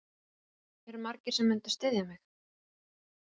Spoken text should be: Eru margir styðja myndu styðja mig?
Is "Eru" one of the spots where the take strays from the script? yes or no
no